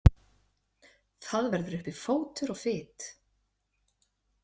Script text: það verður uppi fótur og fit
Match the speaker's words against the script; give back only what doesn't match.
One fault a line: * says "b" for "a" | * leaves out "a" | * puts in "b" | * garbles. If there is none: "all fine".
all fine